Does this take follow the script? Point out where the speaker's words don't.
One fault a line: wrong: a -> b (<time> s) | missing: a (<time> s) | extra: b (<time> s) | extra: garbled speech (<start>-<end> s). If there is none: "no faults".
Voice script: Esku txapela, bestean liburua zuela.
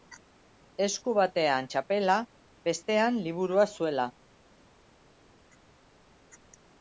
extra: batean (1.2 s)